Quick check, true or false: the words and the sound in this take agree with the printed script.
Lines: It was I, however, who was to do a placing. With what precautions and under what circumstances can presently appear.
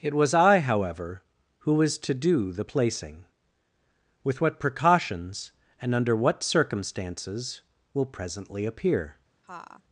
false